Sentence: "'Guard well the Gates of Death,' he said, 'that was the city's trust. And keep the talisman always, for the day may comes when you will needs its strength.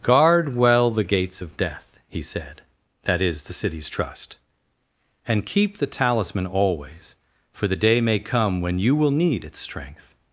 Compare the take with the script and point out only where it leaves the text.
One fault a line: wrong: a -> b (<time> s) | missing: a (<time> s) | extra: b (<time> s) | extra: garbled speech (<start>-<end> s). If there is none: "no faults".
wrong: was -> is (3.2 s)
wrong: comes -> come (8.2 s)
wrong: needs -> need (9.1 s)